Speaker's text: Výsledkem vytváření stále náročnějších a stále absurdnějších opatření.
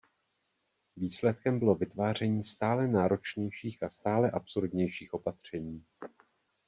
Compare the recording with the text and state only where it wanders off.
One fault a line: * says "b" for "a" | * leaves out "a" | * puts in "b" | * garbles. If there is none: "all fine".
* puts in "bylo"